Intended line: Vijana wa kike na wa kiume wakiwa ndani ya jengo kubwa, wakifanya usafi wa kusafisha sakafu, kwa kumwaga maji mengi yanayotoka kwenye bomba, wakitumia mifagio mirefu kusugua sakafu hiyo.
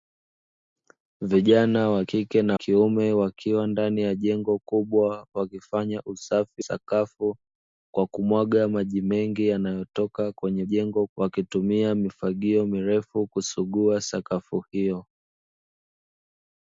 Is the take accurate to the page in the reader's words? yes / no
no